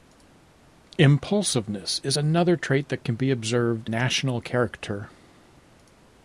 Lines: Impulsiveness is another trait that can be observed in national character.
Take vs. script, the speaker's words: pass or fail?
fail